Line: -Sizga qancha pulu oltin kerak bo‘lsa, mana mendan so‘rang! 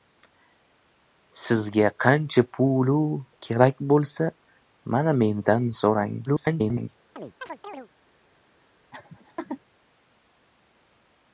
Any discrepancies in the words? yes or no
yes